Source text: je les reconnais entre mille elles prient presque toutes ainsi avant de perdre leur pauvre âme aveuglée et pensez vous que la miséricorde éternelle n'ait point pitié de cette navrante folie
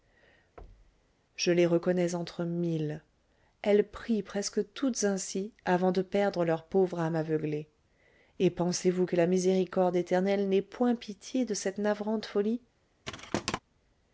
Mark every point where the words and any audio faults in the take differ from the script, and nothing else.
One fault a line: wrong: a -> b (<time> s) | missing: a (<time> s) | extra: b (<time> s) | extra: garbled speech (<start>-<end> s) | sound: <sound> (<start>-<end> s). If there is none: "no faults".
sound: thud (0.6-1.1 s)
sound: thud (13.0-13.6 s)